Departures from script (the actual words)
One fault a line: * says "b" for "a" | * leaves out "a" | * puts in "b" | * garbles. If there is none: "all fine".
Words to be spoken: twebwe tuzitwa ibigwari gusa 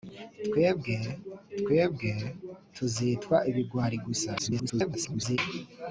* puts in "twebwe"
* garbles